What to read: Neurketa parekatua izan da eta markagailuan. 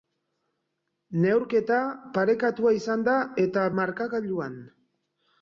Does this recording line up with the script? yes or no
yes